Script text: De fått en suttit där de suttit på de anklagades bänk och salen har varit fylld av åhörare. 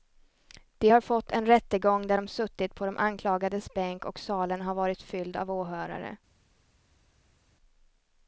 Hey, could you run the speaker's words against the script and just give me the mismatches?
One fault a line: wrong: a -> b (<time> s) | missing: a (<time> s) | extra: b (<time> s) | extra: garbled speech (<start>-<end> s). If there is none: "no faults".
extra: har (0.9 s)
wrong: suttit -> rättegång (1.5 s)